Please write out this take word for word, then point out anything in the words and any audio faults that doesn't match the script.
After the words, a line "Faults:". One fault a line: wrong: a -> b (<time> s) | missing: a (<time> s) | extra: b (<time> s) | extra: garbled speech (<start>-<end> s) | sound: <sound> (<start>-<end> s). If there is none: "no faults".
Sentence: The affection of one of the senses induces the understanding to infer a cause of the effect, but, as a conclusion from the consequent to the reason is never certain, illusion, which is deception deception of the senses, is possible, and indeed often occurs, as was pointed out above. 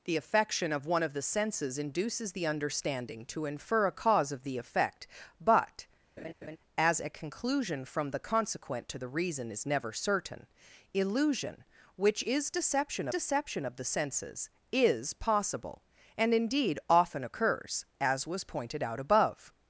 The affection of one of the senses induces the understanding to infer a cause of the effect, but, as a conclusion from the consequent to the reason is never certain, illusion, which is deception deception of the senses, is possible, and indeed often occurs, as was pointed out above.
Faults:
sound: laugh (6.2-6.6 s)